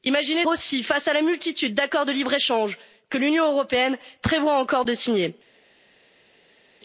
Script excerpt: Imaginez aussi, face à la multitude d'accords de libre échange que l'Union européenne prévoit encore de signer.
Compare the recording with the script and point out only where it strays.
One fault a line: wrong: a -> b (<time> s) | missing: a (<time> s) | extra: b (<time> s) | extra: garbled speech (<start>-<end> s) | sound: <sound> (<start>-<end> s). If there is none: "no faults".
no faults